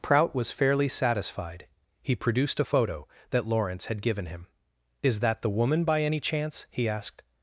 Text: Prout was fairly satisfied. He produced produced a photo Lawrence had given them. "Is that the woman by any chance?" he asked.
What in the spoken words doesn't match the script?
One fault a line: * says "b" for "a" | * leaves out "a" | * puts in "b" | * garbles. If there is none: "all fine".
* leaves out "produced"
* puts in "that"
* says "him" for "them"